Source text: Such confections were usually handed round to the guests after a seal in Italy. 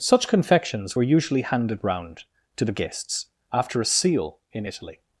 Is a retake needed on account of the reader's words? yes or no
no